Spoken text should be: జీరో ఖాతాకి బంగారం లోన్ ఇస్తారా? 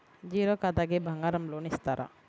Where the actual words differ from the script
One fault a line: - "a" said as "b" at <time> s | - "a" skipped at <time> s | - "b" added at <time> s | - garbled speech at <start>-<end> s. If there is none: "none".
none